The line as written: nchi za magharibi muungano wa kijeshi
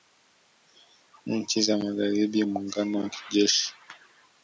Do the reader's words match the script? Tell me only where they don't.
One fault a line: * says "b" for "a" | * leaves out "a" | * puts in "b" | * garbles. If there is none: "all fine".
all fine